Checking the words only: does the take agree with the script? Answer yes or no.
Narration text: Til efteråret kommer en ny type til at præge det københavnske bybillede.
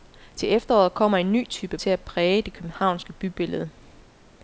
yes